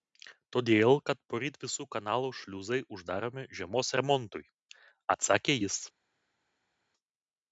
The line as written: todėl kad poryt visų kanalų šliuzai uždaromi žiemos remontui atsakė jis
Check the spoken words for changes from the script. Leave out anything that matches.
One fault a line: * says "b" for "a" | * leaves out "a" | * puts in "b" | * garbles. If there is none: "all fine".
all fine